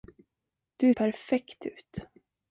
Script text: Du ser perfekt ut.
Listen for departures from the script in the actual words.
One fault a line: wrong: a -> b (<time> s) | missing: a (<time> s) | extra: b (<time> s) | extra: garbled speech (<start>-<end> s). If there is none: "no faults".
missing: ser (0.9 s)